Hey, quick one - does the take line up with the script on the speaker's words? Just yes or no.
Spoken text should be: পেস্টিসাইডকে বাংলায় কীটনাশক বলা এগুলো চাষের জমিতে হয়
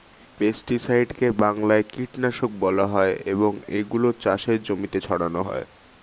no